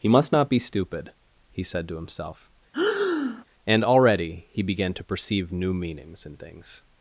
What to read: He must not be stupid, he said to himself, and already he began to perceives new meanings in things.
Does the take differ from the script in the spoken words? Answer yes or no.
yes